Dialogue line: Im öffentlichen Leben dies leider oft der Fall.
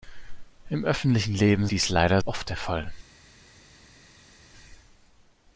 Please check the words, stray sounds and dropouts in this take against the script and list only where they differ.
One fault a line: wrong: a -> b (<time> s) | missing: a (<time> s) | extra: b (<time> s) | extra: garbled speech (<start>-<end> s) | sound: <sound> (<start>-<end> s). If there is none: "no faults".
no faults